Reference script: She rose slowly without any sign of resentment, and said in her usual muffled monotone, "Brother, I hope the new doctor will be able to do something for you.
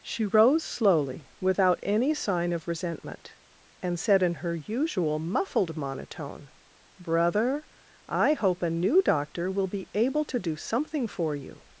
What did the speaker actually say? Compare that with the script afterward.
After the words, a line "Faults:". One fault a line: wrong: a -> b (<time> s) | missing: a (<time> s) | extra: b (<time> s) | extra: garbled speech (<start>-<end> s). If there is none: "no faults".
She rose slowly without any sign of resentment, and said in her usual muffled monotone, "Brother, I hope a new doctor will be able to do something for you.
Faults:
wrong: the -> a (8.6 s)